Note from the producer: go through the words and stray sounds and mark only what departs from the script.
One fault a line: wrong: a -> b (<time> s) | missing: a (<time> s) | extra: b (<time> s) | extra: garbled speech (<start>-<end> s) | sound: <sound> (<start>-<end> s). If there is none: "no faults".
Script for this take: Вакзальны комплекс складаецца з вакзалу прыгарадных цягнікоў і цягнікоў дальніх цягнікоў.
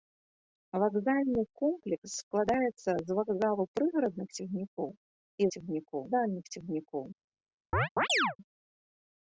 sound: chirp (7.7-8.4 s)